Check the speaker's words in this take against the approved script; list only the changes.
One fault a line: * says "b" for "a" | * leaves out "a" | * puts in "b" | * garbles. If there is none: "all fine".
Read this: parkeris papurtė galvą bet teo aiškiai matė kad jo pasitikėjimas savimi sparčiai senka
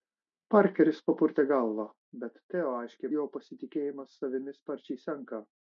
* leaves out "matė kad"